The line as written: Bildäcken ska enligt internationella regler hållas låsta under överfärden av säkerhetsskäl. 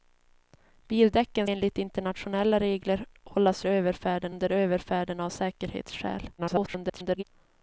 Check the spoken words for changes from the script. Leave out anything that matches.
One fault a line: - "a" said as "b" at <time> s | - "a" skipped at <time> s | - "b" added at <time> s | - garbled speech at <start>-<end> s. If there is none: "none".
- "ska" skipped at 1.5 s
- "låsta" said as "överfärden" at 3.7 s
- garbled speech at 6.4-7.2 s